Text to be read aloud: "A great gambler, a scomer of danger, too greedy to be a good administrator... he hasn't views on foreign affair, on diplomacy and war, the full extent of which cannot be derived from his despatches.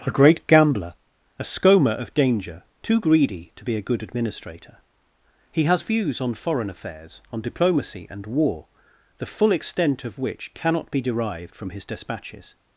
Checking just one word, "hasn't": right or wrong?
wrong